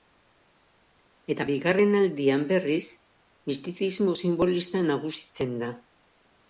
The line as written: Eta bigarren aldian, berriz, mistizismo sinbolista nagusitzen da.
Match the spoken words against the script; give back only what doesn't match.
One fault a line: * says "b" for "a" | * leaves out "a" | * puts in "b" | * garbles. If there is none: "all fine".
all fine